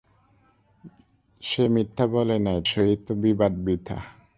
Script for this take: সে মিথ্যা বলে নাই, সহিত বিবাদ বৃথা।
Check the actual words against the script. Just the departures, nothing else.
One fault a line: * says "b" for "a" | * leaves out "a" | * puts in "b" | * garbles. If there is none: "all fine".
all fine